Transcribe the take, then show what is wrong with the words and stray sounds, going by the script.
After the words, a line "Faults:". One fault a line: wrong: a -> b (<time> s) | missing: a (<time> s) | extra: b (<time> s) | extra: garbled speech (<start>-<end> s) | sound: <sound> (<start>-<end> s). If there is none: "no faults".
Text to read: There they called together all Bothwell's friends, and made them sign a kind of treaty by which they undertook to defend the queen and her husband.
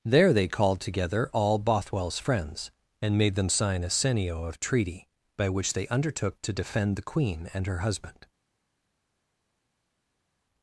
There they called together all Bothwell's friends, and made them sign a senio of treaty by which they undertook to defend the queen and her husband.
Faults:
wrong: kind -> senio (3.9 s)